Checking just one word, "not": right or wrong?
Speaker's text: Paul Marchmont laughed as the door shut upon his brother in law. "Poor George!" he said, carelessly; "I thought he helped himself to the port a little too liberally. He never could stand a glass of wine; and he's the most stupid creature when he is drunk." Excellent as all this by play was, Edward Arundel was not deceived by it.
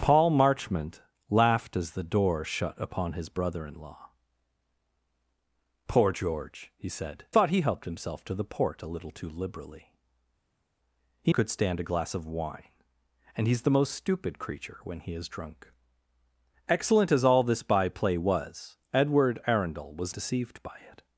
wrong